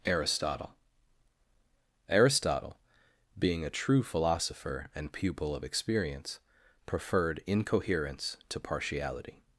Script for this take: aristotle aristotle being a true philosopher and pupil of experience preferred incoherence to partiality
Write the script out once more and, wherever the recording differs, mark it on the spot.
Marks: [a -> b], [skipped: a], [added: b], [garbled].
aristotle aristotle being a true philosopher and pupil of experience preferred incoherence to partiality